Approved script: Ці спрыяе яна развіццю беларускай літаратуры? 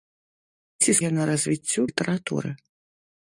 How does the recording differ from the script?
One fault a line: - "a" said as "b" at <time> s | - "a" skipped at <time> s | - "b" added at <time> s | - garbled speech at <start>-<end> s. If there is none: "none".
- "спрыяе" skipped at 0.9 s
- "беларускай" skipped at 1.8 s